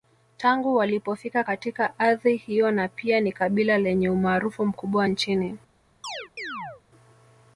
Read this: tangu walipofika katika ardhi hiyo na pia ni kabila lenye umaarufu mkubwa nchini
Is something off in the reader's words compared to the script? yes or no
no